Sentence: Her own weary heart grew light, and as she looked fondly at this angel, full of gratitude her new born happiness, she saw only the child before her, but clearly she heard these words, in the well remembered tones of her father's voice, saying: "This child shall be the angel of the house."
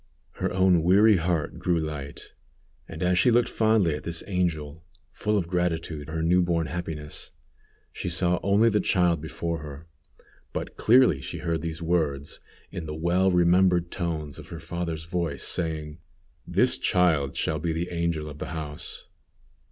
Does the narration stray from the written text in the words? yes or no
no